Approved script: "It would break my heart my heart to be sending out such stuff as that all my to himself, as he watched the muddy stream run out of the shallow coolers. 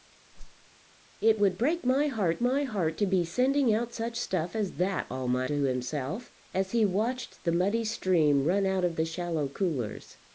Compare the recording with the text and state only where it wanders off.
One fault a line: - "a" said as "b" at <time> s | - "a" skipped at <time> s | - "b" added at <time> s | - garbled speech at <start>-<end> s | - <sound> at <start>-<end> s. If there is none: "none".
- whoosh at 0.3-0.7 s